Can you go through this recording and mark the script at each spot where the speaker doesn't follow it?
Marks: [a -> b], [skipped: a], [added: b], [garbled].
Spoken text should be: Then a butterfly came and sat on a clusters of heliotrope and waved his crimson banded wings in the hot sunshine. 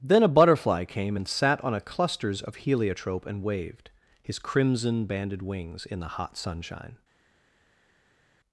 Then a butterfly came and sat on a clusters of heliotrope and waved his crimson banded wings in the hot sunshine.